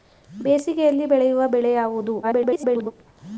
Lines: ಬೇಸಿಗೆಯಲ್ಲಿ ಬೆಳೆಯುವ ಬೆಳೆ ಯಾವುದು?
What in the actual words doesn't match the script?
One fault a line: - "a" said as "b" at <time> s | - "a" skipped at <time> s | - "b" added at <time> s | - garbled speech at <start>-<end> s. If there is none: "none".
- garbled speech at 2.2-2.9 s